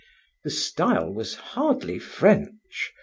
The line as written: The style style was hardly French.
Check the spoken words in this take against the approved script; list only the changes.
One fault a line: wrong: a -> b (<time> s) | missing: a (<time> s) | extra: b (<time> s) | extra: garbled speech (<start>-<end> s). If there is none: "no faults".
missing: style (1.1 s)